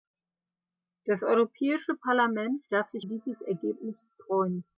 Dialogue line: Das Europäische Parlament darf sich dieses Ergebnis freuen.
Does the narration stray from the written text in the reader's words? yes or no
no